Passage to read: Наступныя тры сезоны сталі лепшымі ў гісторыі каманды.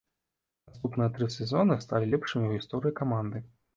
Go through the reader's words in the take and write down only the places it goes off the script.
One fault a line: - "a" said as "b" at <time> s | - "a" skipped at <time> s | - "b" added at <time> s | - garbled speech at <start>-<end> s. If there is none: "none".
none